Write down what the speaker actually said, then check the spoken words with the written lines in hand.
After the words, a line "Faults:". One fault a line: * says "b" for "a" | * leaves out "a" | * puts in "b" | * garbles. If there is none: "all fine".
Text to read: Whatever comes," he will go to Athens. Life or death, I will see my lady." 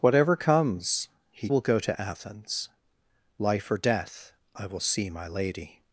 Whatever comes," he will go to Athens. Life or death, I will see my lady."
Faults:
all fine